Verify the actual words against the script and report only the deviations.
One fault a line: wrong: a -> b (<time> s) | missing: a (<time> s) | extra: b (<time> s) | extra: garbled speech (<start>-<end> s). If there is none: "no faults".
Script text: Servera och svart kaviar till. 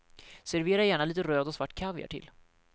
extra: gärna lite röd (0.8 s)